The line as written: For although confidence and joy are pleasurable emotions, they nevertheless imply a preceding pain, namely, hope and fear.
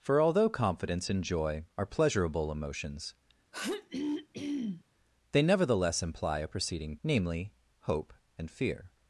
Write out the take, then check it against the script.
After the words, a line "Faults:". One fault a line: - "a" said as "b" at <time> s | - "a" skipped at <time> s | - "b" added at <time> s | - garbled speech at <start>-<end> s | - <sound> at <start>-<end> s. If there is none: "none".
For although confidence and joy are pleasurable emotions, they nevertheless imply a preceding namely, hope and fear.
Faults:
- throat clearing at 3.5-4.8 s
- "pain" skipped at 7.0 s